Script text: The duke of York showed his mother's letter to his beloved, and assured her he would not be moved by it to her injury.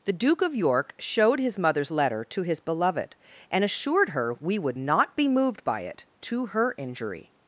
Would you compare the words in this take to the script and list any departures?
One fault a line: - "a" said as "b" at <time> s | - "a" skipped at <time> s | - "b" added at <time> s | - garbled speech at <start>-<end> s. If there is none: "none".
- "he" said as "we" at 4.4 s